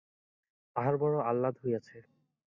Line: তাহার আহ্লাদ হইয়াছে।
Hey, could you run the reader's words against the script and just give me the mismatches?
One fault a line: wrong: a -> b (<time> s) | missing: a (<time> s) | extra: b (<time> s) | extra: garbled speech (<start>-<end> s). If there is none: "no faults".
extra: বড়ো (1.0 s)